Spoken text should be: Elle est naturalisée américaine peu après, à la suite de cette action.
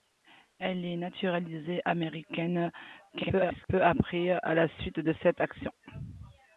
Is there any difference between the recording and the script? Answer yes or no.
yes